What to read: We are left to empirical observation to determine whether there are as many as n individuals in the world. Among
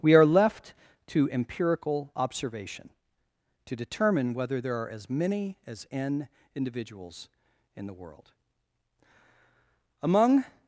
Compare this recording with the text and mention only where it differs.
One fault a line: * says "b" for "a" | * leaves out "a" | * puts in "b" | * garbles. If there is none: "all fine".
all fine